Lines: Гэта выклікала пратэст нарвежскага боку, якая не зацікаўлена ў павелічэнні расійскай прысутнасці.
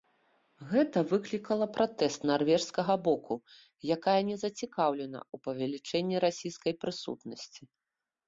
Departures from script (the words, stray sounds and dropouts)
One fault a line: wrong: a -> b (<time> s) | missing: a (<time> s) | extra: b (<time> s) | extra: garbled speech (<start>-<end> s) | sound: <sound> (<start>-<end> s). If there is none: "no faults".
no faults